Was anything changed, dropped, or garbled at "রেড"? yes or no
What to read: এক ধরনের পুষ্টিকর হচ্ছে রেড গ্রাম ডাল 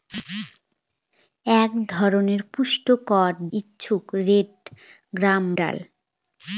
no